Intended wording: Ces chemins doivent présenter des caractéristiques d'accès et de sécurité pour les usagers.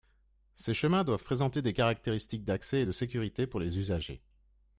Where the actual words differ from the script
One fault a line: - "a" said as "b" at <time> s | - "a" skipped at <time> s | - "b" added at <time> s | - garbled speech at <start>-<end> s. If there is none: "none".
none